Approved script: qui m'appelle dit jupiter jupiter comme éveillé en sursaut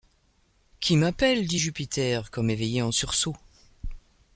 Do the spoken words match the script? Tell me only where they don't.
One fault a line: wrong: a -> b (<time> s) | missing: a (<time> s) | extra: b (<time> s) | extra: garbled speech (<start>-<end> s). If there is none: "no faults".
missing: jupiter (2.3 s)